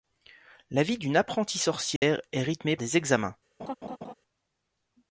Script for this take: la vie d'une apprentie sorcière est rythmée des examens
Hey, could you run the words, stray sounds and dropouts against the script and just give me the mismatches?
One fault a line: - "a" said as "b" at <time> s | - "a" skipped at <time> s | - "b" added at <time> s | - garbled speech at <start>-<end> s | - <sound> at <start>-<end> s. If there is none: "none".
- dropout at 2.0-2.0 s
- laugh at 3.6-4.1 s